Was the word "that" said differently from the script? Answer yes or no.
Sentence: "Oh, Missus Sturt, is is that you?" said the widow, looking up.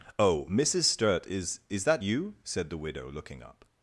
no